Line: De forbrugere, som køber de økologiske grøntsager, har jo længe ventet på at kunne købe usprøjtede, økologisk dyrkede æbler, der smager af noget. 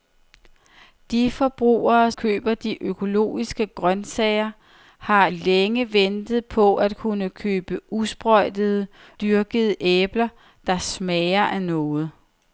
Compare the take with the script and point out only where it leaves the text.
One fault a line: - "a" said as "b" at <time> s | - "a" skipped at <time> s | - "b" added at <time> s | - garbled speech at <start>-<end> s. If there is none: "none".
- "som" skipped at 2.1 s
- "jo" skipped at 5.3 s
- "økologisk" skipped at 8.9 s